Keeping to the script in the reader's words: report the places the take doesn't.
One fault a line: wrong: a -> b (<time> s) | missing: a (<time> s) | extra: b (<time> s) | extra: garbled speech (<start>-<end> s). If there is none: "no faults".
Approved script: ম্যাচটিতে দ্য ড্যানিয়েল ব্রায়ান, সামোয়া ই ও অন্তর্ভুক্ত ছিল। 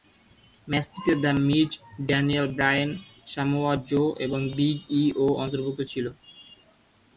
extra: মিজ (1.5 s)
extra: জো এবং বিগ (3.9 s)